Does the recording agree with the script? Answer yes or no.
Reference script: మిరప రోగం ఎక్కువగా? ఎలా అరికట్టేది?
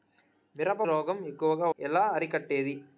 yes